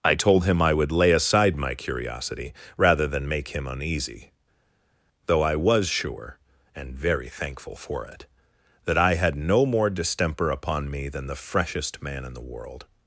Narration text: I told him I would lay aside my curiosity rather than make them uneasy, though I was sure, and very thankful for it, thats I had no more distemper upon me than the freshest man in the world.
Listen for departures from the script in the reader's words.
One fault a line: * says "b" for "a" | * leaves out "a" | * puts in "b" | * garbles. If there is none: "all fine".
* says "him" for "them"
* says "that" for "thats"